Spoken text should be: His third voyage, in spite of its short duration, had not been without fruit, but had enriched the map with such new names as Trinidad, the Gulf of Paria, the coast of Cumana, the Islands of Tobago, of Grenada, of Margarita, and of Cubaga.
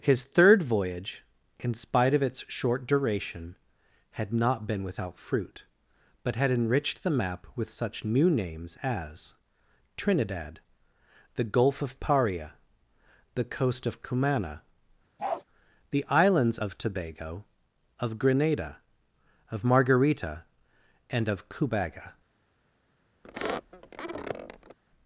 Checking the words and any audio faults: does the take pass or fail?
fail